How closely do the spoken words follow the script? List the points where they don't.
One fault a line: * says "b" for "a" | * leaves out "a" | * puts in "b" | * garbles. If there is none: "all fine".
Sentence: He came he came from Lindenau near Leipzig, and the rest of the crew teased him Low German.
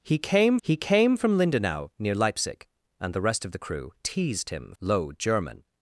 all fine